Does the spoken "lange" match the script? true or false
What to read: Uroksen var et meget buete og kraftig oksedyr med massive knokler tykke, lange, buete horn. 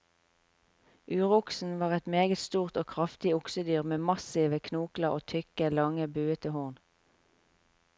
true